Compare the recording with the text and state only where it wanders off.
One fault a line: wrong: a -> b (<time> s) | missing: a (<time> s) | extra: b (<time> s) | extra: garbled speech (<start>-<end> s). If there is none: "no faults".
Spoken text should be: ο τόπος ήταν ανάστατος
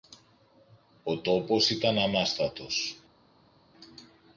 no faults